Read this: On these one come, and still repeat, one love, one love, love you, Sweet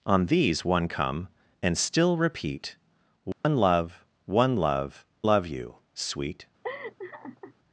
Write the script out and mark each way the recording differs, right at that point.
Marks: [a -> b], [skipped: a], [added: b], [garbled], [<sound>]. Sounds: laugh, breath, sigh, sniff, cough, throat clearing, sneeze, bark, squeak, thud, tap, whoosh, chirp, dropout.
On these one come, and still repeat, one [dropout] love, one love, love you, Sweet [laugh]